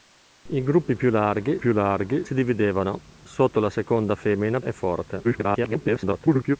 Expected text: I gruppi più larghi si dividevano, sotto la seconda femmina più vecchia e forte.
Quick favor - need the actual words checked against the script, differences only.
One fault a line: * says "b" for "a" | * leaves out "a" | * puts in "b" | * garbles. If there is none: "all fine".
* puts in "più larghi"
* leaves out "più vecchia"
* garbles